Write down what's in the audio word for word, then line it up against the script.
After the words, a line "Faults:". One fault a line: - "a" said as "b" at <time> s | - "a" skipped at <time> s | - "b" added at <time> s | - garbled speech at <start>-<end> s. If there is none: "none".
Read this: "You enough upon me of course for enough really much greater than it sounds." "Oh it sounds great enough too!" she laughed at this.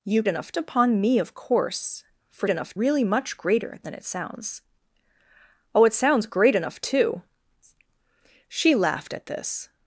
"You enough upon me of course for enough really much greater than it sounds." "Oh it sounds great enough too!" she laughed at this.
Faults:
none